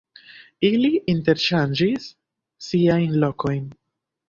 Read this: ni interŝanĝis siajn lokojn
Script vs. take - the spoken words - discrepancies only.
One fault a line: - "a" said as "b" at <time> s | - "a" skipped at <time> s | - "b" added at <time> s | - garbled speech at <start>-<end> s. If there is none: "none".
- "ni" said as "ili" at 0.7 s